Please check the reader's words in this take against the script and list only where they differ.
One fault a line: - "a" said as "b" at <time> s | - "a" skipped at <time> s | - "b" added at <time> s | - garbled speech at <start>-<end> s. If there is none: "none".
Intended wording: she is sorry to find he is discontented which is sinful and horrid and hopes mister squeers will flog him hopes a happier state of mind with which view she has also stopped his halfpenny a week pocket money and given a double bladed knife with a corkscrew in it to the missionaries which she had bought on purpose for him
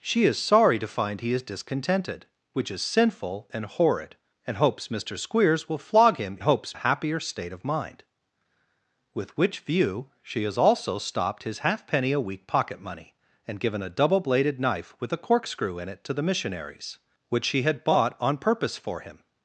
none